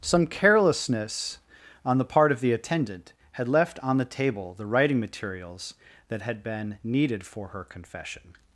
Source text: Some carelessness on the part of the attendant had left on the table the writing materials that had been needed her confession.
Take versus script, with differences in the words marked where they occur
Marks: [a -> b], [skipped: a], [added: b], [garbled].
Some carelessness on the part of the attendant had left on the table the writing materials that had been needed [added: for] her confession.